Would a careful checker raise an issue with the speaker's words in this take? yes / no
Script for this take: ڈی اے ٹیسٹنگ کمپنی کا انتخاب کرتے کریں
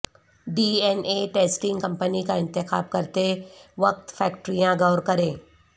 yes